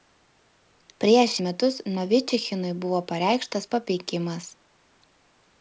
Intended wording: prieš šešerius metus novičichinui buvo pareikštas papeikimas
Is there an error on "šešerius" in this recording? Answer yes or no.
yes